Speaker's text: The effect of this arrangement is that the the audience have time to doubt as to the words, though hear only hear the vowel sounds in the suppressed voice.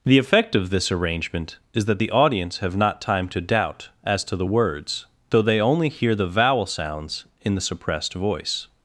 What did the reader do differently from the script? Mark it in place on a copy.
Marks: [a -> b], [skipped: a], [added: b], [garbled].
The effect of this arrangement is that the [skipped: the] audience have [added: not] time to doubt as to the words, though [hear -> they] only hear the vowel sounds in the suppressed voice.